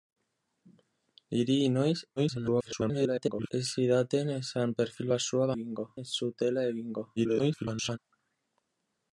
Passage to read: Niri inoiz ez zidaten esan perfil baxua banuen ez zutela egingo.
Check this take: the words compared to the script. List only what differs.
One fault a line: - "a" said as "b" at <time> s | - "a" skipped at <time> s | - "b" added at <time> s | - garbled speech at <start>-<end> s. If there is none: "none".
- garbled speech at 2.2-3.5 s
- "banuen" said as "egingo" at 5.6 s
- garbled speech at 7.2-8.0 s